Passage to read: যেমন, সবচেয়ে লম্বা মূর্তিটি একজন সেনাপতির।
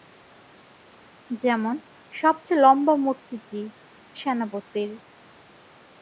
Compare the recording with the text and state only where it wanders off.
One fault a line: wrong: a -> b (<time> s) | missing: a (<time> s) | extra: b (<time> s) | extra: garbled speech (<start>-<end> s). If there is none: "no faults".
missing: একজন (3.6 s)